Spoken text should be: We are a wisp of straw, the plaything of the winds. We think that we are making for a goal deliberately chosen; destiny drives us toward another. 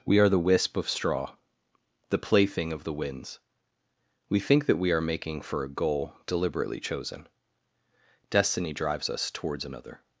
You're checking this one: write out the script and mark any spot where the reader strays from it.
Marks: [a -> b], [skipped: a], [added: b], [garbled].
We are [a -> the] wisp of straw, the plaything of the winds. We think that we are making for a goal deliberately chosen; destiny drives us [toward -> towards] another.